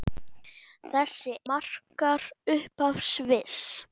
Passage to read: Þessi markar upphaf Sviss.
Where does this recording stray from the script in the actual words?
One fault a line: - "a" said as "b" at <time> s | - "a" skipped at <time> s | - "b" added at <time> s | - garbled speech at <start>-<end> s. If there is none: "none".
none